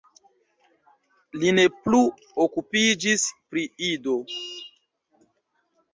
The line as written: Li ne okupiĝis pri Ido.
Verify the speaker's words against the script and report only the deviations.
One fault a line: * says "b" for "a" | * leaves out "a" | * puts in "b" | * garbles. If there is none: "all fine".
* puts in "plu"